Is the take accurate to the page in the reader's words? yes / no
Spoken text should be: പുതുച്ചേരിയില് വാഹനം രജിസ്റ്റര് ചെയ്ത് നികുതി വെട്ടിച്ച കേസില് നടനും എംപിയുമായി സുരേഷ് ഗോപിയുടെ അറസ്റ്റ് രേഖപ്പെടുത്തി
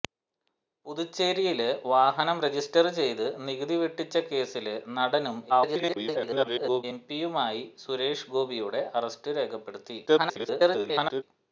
no